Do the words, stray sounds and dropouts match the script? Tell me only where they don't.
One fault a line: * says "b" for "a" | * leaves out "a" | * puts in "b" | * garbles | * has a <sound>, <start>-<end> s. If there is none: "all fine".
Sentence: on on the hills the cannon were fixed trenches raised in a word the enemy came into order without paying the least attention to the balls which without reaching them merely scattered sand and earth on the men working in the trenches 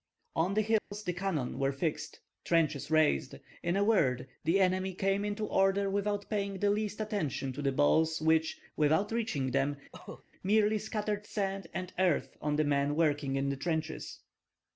* leaves out "on"
* has a dropout, 0.8-0.9 s
* has a cough, 9.9-10.2 s